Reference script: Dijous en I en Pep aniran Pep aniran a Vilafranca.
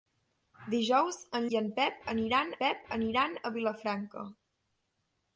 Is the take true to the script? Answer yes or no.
yes